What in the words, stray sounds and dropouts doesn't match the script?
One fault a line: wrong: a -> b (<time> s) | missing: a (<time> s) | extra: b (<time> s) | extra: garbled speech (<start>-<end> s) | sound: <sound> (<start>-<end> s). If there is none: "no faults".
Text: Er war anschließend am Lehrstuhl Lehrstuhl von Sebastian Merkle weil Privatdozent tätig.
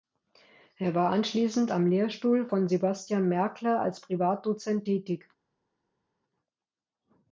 missing: Lehrstuhl (2.5 s)
wrong: weil -> als (3.8 s)